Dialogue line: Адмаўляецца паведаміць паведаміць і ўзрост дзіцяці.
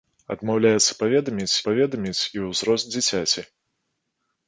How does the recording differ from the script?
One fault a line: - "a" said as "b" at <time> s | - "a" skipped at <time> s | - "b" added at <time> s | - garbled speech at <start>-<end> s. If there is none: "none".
none